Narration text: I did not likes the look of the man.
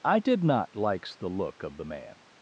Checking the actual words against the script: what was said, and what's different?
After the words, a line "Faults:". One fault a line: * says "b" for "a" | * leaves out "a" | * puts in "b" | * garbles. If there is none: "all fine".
I did not likes the look of the man.
Faults:
all fine